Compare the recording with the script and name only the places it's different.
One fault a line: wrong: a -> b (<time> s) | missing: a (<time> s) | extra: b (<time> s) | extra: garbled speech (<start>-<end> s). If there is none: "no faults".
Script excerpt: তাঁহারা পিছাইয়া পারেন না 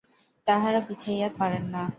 no faults